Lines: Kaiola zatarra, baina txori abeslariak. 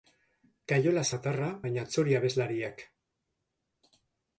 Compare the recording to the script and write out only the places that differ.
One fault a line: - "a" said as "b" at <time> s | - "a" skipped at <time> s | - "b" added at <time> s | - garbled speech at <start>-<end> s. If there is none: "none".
none